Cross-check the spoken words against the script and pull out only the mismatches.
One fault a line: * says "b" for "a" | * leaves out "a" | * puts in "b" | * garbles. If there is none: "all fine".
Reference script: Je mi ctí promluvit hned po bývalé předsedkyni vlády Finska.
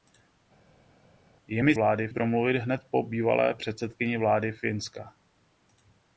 * says "vlády" for "ctí"